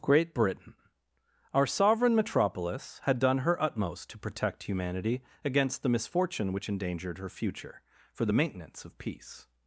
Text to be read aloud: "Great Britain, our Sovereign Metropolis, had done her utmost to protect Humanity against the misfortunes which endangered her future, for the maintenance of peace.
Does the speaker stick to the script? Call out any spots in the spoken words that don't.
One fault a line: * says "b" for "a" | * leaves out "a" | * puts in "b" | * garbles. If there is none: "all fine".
* says "misfortune" for "misfortunes"